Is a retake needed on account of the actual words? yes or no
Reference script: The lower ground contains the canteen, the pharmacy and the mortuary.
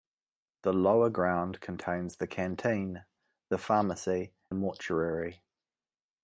yes